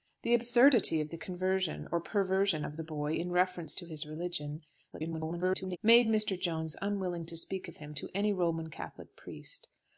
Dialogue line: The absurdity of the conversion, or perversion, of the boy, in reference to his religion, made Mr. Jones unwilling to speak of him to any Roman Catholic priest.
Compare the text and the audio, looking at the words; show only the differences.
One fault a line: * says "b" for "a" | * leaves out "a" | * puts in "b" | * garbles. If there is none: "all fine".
* garbles